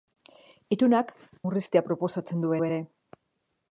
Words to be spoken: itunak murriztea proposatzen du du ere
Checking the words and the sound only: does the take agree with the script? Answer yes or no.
yes